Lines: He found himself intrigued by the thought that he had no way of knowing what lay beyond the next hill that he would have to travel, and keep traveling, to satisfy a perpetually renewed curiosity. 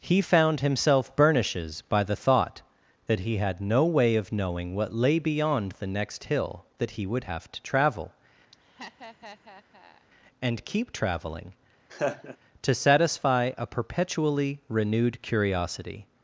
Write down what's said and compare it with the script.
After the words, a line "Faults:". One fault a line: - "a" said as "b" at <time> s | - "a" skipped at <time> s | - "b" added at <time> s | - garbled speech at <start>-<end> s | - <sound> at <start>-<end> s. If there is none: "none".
He found himself burnishes by the thought that he had no way of knowing what lay beyond the next hill that he would have to travel, and keep traveling, to satisfy a perpetually renewed curiosity.
Faults:
- "intrigued" said as "burnishes" at 1.1 s
- laugh at 8.5-10.1 s
- laugh at 11.9-12.4 s